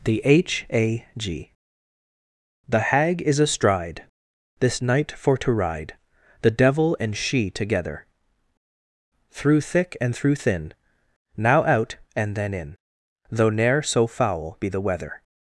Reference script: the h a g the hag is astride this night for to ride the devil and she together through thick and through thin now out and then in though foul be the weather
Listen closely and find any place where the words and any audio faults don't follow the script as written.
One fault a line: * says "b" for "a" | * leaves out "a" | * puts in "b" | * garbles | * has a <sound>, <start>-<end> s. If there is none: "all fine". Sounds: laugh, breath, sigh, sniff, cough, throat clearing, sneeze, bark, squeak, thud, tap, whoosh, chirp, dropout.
* puts in "ne'er so"